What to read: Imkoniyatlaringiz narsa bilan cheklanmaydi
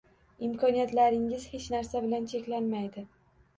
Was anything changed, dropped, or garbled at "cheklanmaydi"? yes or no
no